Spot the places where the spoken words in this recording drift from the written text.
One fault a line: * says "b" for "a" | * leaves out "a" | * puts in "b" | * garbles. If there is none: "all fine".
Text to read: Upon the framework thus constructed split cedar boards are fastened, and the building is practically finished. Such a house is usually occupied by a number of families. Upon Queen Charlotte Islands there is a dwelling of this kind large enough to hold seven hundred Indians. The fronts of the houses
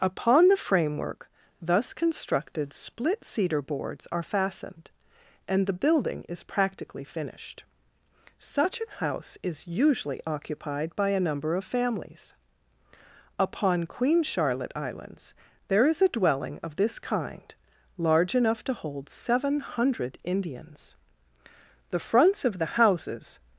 all fine